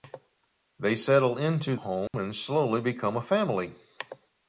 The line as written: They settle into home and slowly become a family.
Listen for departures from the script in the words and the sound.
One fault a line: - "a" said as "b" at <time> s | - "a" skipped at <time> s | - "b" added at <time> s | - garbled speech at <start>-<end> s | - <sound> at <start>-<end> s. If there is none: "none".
- dropout at 2.1-2.1 s